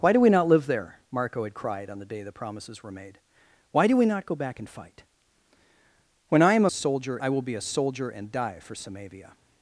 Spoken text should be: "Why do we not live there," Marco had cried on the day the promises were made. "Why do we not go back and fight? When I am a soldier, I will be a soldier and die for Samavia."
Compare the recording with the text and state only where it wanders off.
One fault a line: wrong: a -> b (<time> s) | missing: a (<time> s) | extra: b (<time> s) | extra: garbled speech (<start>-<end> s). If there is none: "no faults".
no faults